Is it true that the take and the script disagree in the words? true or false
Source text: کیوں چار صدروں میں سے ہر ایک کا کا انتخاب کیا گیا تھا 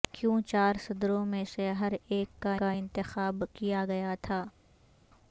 false